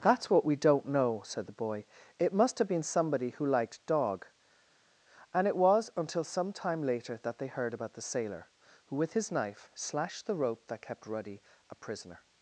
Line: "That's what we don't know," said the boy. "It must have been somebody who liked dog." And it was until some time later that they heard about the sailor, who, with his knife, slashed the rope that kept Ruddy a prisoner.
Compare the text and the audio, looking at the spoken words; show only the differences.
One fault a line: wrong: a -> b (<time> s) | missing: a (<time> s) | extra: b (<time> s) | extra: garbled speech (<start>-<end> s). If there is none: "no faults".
no faults